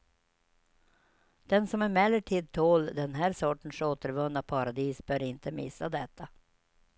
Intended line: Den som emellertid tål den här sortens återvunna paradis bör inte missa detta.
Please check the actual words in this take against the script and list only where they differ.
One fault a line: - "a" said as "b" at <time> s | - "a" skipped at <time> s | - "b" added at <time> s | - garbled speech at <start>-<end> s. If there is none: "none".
none